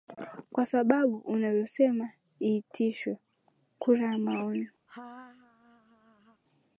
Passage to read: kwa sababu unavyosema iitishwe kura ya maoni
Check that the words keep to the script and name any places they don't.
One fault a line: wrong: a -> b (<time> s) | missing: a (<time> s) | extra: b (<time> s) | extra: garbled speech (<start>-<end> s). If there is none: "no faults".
no faults